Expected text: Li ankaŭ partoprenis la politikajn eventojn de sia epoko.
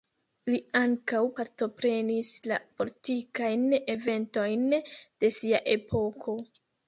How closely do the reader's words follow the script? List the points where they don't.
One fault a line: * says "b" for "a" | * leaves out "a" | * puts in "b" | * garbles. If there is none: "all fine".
all fine